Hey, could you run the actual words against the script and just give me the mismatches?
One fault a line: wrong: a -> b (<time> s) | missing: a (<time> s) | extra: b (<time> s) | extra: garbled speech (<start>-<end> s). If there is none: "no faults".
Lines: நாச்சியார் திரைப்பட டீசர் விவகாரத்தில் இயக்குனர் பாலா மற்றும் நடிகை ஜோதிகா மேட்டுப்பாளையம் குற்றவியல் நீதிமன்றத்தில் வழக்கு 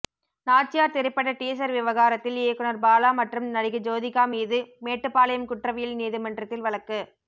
extra: மீது (4.3 s)